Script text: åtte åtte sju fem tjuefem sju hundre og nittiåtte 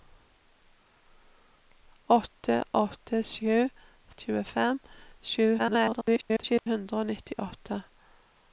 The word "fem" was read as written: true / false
false